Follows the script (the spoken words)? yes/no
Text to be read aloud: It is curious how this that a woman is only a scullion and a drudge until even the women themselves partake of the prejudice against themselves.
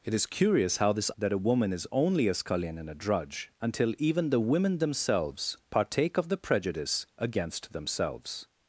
yes